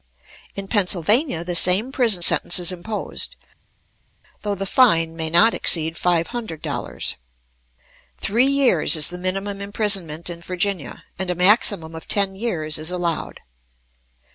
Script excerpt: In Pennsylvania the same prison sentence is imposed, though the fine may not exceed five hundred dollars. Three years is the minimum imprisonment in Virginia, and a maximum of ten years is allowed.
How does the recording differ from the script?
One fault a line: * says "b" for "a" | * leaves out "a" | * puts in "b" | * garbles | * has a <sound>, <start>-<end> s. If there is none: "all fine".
all fine